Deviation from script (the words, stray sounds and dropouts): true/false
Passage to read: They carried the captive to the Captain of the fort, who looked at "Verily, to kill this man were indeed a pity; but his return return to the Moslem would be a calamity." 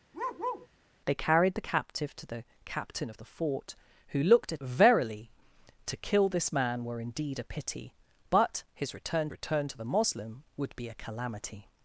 true